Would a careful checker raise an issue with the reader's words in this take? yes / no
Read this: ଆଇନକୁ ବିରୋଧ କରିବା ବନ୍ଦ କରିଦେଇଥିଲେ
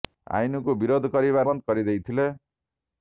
no